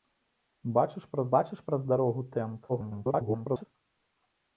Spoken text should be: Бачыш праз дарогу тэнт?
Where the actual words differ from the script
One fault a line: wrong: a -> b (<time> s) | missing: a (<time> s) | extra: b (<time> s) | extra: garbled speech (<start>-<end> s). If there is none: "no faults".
extra: бачыш праз (1.3 s)
extra: garbled speech (2.7-3.7 s)